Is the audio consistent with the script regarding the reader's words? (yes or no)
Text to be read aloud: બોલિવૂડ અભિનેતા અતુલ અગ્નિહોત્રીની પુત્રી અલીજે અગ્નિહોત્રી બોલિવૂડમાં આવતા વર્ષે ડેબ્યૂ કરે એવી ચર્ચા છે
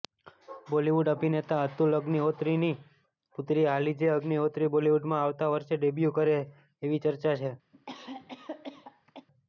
yes